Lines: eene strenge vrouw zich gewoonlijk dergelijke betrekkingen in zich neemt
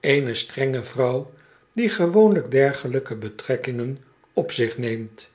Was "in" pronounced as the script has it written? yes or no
no